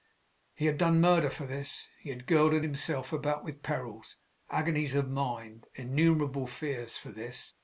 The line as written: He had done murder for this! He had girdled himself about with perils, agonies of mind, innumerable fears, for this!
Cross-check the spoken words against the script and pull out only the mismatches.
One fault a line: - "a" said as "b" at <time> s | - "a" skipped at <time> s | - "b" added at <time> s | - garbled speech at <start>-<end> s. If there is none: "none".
none